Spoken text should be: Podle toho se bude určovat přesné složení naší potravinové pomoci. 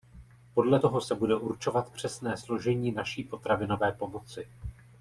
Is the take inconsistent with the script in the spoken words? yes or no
no